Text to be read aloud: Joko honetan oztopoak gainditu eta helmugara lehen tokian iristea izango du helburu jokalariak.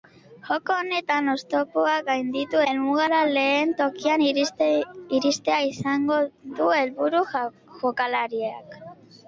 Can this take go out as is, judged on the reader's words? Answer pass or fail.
fail